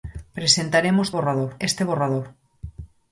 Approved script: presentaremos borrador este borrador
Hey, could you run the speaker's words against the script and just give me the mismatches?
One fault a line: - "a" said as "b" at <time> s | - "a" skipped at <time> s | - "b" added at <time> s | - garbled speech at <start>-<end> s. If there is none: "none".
none